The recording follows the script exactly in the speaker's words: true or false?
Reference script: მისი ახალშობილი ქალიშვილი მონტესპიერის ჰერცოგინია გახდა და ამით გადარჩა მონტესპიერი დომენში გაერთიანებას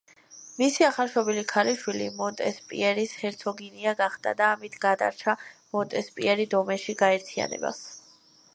true